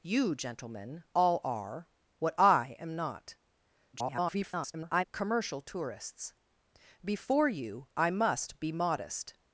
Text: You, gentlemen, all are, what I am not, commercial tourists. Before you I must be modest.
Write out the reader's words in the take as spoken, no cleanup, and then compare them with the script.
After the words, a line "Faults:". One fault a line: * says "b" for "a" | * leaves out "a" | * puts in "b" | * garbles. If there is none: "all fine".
You, gentlemen, all are, what I am not, [garbled] commercial tourists. Before you I must be modest.
Faults:
* garbles